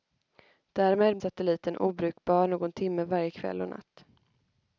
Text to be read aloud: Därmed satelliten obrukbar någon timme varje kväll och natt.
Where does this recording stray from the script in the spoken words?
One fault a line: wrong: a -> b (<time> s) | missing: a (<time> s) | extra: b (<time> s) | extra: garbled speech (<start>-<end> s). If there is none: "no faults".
no faults